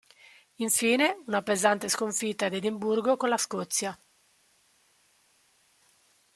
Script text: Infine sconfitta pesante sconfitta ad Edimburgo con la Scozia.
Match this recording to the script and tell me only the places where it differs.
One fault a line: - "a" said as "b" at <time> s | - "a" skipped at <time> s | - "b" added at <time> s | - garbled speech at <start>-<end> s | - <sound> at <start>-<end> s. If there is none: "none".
- "sconfitta" said as "una" at 1.3 s